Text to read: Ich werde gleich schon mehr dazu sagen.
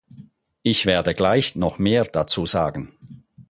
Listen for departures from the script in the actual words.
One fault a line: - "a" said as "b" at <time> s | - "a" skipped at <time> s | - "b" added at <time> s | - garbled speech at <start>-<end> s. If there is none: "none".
- "schon" said as "noch" at 1.6 s